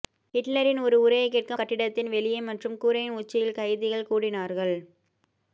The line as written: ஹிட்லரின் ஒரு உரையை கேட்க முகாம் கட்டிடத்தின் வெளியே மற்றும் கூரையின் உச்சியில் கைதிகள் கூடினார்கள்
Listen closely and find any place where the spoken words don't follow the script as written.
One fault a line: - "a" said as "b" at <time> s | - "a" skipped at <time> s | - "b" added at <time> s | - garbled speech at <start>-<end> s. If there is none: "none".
- "முகாம்" skipped at 1.6 s